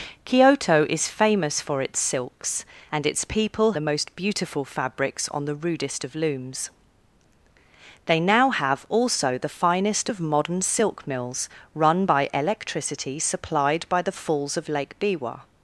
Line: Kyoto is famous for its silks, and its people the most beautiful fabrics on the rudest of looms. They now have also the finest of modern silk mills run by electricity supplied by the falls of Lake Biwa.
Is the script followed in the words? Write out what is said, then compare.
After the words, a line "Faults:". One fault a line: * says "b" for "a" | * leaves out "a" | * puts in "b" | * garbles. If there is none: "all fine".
Kyoto is famous for its silks, and its people the most beautiful fabrics on the rudest of looms. They now have also the finest of modern silk mills run by electricity supplied by the falls of Lake Biwa.
Faults:
all fine